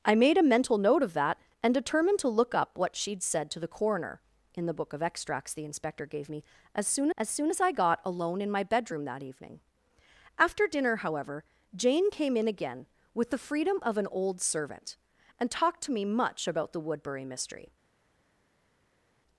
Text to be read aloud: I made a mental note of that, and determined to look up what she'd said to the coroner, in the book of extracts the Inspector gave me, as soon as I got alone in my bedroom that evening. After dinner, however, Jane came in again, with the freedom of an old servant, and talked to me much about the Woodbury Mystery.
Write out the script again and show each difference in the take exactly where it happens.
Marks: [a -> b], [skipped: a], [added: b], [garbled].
I made a mental note of that, and determined to look up what she'd said to the coroner, in the book of extracts the Inspector gave me, as soon as [added: soon as] I got alone in my bedroom that evening. After dinner, however, Jane came in again, with the freedom of an old servant, and talked to me much about the Woodbury Mystery.